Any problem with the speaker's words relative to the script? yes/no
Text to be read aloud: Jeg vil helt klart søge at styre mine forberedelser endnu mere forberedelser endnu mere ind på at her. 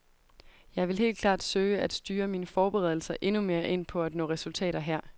yes